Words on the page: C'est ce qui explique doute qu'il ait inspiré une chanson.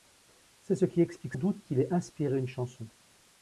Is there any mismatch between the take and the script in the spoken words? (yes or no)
no